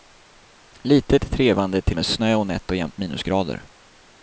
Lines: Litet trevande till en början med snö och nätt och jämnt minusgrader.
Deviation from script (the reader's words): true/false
true